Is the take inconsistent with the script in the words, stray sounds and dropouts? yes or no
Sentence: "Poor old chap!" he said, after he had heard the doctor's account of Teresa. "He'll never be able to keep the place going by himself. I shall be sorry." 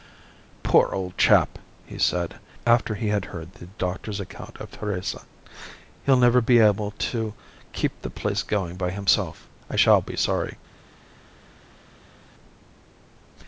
no